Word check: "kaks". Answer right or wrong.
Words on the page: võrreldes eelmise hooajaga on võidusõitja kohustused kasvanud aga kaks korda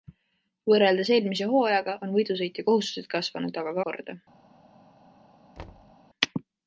wrong